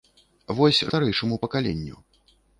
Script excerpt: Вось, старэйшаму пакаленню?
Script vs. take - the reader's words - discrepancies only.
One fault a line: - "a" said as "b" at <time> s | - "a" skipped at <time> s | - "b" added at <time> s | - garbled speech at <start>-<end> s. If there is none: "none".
none